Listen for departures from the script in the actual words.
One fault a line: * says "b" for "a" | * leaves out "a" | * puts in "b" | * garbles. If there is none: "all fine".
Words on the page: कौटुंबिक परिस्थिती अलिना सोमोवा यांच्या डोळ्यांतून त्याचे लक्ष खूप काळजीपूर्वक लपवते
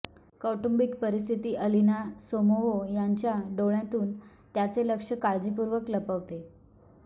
* leaves out "खूप"